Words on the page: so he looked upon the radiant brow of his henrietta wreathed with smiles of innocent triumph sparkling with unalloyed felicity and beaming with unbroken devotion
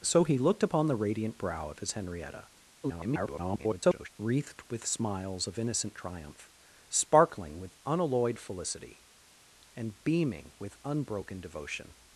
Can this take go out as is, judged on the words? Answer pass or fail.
fail